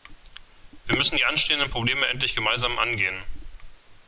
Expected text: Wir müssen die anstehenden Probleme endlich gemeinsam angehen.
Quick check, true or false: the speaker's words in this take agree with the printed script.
true